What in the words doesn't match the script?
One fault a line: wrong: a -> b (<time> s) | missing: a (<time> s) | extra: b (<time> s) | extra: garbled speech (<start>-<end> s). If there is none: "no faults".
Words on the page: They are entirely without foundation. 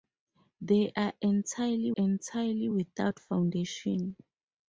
extra: entirely (1.9 s)